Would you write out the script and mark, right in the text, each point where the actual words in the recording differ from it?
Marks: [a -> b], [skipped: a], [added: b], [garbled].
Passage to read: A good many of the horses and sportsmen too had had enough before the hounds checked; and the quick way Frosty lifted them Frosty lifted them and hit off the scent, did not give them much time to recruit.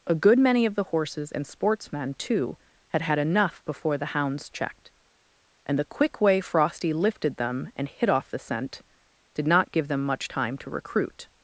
A good many of the horses and sportsmen too had had enough before the hounds checked; and the quick way Frosty lifted them [skipped: Frosty lifted them] and hit off the scent, did not give them much time to recruit.